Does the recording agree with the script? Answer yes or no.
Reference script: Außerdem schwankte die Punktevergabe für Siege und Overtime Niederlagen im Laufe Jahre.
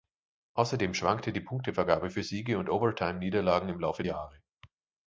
yes